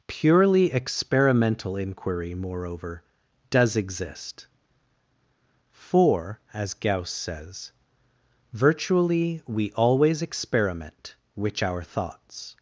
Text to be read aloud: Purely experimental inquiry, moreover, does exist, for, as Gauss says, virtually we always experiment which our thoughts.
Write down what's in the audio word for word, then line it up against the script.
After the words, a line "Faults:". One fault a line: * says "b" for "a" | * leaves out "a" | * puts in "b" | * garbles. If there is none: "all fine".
Purely experimental inquiry, moreover, does exist, for, as Gauss says, virtually we always experiment which our thoughts.
Faults:
all fine